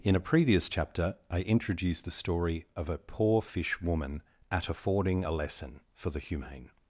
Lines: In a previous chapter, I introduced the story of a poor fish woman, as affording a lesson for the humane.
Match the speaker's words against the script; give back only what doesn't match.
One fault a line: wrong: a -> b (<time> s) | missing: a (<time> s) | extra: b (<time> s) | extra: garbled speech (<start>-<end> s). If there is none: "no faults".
wrong: as -> at (4.5 s)